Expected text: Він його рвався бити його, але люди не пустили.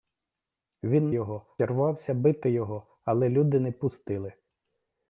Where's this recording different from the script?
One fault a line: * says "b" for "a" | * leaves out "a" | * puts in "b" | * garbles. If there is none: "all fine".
all fine